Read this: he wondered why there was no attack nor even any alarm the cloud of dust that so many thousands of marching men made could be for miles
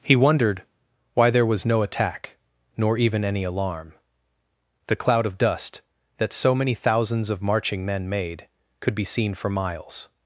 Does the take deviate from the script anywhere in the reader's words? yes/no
yes